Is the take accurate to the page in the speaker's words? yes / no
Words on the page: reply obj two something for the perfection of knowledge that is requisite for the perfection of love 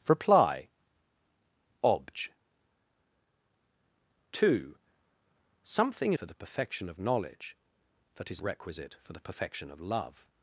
yes